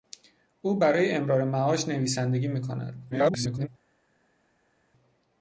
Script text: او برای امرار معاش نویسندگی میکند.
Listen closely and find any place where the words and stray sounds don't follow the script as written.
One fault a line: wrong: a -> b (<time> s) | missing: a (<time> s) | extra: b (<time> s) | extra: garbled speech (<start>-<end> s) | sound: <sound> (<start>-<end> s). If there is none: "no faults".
extra: garbled speech (3.1-3.7 s)